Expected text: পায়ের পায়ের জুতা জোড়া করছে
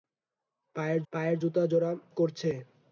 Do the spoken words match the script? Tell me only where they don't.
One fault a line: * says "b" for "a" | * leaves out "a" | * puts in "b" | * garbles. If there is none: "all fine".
all fine